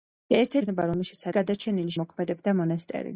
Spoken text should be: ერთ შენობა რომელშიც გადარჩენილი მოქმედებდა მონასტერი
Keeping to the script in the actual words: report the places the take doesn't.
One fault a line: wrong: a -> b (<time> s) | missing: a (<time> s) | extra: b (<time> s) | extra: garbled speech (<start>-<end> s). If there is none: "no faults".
no faults